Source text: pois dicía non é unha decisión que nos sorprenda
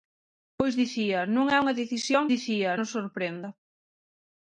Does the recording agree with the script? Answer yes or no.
no